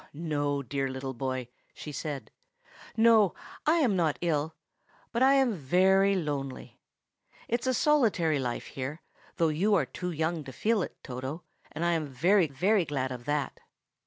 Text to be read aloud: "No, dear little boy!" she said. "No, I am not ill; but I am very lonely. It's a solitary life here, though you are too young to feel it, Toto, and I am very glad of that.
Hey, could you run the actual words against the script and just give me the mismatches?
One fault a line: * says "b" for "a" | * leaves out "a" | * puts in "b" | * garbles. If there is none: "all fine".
* puts in "very"